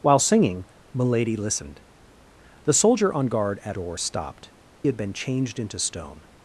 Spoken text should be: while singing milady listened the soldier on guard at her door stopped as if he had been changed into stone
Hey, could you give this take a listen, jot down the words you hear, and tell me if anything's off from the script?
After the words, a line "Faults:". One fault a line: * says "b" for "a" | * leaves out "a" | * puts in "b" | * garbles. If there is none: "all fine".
while singing milady listened the soldier on guard at door stopped had been changed into stone
Faults:
* leaves out "her"
* leaves out "as if he"